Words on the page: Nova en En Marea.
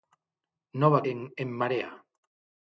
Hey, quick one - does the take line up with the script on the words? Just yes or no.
yes